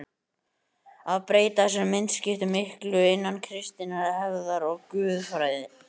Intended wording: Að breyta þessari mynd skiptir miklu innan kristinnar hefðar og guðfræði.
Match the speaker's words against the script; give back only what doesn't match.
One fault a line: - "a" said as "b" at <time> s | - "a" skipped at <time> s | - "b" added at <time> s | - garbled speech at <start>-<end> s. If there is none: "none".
none